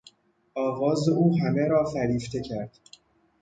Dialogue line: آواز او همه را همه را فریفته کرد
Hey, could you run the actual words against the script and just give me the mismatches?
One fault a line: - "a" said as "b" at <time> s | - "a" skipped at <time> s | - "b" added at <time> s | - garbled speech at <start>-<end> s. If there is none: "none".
- "همه را" skipped at 1.8 s